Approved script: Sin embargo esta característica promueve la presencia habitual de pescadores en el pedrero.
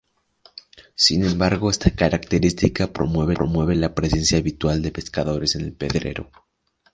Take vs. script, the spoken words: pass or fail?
fail